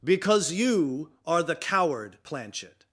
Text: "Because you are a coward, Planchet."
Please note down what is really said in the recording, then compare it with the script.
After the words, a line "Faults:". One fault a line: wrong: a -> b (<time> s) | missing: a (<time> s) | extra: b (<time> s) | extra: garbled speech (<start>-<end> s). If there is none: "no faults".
"Because you are the coward, Planchet."
Faults:
wrong: a -> the (1.4 s)